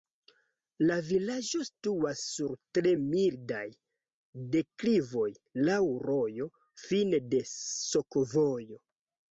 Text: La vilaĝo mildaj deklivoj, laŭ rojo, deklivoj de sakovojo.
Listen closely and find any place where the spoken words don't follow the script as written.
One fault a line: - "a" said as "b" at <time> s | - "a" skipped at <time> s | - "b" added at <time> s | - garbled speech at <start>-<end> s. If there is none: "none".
- "situas sur tre" added at 1.7 s
- "deklivoj" said as "fine" at 6.9 s